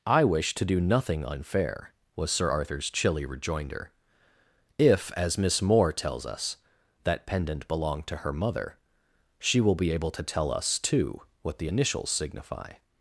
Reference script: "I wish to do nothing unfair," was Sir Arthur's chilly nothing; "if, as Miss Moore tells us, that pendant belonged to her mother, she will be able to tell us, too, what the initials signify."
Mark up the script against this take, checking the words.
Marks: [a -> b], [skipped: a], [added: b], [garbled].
"I wish to do nothing unfair," was Sir Arthur's chilly [nothing; -> rejoinder] "if, as Miss Moore tells us, that pendant belonged to her mother, she will be able to tell us, too, what the initials signify."